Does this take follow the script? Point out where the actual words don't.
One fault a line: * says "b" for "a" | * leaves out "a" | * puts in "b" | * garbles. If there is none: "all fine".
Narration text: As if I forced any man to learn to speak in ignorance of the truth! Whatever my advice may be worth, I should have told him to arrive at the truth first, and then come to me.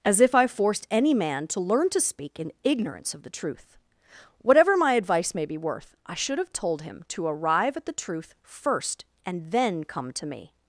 all fine